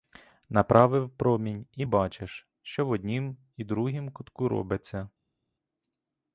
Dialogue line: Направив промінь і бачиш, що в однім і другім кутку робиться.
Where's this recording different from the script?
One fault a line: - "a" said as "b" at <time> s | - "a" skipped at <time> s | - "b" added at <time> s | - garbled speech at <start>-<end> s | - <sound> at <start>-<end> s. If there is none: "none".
none